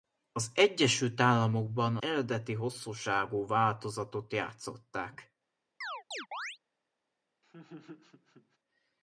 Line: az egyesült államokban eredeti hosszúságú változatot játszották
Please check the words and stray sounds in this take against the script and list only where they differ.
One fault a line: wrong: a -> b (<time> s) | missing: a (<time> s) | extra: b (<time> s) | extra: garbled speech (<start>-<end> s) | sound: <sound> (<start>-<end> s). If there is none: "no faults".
sound: chirp (5.8-6.6 s)
sound: laugh (7.4-8.6 s)